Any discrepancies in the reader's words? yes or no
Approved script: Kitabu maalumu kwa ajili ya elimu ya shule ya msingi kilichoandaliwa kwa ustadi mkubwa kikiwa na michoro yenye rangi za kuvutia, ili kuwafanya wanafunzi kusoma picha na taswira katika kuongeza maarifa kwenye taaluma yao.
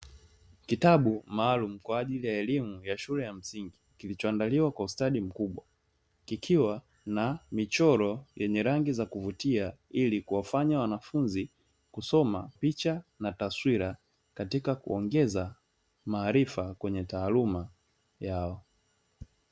no